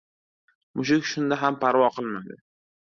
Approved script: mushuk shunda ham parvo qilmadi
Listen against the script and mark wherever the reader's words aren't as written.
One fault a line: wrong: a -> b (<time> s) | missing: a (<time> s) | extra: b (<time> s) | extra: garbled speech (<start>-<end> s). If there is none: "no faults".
no faults